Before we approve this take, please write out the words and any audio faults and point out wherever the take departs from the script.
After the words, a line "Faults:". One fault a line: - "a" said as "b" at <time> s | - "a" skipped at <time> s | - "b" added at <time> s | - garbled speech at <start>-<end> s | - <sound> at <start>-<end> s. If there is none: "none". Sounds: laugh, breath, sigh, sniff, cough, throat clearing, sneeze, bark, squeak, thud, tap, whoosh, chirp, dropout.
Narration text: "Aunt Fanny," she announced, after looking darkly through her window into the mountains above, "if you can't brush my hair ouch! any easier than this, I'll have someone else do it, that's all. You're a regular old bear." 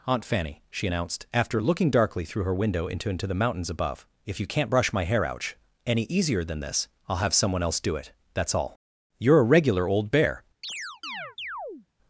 "Aunt Fanny," she announced, after looking darkly through her window into into the mountains above, "if you can't brush my hair ouch! any easier than this, I'll have someone else do it, that's all. You're a regular old bear."
Faults:
- "into" added at 3.1 s
- chirp at 10.6-11.9 s